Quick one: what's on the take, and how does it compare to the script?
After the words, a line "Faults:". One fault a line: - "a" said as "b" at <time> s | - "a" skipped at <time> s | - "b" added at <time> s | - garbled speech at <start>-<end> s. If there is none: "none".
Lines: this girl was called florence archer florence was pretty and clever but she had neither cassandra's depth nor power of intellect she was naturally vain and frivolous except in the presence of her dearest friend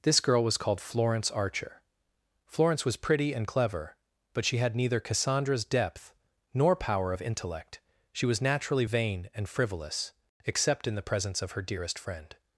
this girl was called florence archer florence was pretty and clever but she had neither cassandra's depth nor power of intellect she was naturally vain and frivolous except in the presence of her dearest friend
Faults:
none